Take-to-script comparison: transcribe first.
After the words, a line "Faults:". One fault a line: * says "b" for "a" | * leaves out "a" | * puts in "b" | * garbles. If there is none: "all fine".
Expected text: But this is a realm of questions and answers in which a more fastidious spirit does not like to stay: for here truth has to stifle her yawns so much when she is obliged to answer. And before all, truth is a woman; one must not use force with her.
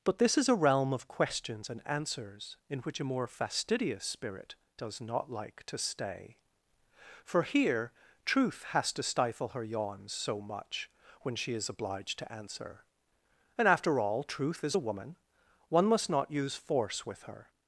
But this is a realm of questions and answers in which a more fastidious spirit does not like to stay: for here truth has to stifle her yawns so much when she is obliged to answer. And after all, truth is a woman; one must not use force with her.
Faults:
* says "after" for "before"